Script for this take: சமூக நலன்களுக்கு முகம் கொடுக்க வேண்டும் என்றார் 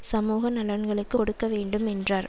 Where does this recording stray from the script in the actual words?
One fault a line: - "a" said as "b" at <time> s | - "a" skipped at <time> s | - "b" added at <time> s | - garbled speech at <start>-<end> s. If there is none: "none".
- "முகம்" skipped at 1.2 s